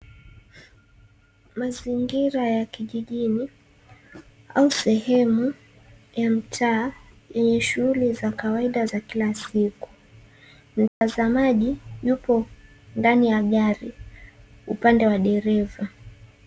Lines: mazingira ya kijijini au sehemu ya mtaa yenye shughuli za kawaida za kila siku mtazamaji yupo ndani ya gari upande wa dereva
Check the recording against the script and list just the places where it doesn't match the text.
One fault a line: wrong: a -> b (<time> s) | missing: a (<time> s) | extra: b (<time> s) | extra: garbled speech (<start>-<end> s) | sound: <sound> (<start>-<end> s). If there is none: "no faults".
sound: dropout (10.9-11.0 s)